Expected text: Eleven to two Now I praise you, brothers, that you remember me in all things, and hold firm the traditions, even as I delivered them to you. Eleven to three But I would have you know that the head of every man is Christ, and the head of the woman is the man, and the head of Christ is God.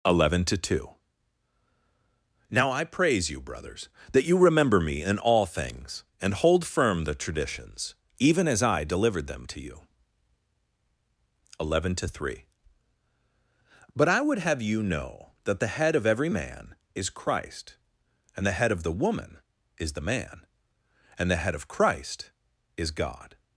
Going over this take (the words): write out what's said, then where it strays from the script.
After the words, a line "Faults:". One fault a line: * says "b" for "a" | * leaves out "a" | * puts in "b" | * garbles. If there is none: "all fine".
Eleven to two Now I praise you, brothers, that you remember me in all things, and hold firm the traditions, even as I delivered them to you. Eleven to three But I would have you know that the head of every man is Christ, and the head of the woman is the man, and the head of Christ is God.
Faults:
all fine